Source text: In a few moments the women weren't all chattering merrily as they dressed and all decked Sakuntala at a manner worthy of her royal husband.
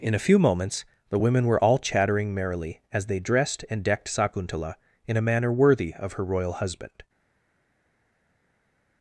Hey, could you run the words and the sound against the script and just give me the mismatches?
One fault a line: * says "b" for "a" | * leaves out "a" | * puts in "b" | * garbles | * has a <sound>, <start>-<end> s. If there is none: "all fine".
* says "were" for "weren't"
* leaves out "all"
* says "in" for "at"